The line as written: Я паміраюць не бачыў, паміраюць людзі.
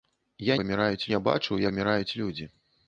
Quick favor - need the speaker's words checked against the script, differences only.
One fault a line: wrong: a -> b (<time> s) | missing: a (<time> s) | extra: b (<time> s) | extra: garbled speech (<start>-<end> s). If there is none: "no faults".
no faults